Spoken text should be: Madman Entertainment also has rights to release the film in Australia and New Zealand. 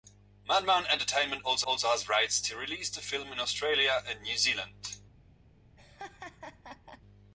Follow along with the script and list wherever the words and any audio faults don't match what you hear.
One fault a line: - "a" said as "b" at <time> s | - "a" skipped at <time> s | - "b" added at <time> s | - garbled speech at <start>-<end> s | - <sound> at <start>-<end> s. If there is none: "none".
- "also" added at 1.7 s
- laugh at 5.8-7.0 s